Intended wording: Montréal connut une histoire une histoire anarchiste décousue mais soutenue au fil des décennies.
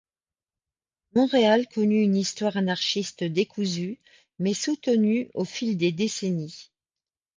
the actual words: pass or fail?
fail